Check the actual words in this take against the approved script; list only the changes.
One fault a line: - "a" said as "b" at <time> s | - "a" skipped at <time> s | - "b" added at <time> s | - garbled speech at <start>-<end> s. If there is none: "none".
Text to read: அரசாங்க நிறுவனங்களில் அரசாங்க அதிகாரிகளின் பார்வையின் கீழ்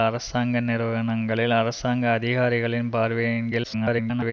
- garbled speech at 3.6-4.3 s